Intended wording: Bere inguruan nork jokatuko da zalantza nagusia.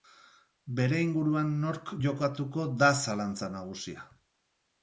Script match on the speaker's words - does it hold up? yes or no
yes